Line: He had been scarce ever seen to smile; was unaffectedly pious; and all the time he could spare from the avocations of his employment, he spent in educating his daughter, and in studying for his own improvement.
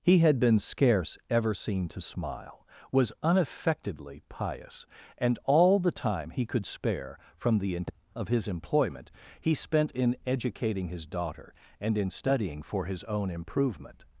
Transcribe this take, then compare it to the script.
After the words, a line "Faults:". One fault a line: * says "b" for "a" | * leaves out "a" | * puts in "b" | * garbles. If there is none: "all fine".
He had been scarce ever seen to smile; was unaffectedly pious; and all the time he could spare from the of his employment, he spent in educating his daughter, and in studying for his own improvement.
Faults:
* leaves out "avocations"